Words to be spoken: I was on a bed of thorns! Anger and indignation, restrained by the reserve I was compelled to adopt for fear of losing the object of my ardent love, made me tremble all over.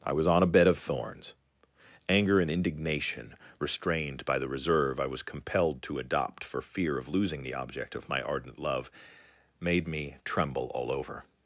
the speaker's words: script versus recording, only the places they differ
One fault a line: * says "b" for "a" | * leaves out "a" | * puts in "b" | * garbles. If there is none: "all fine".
all fine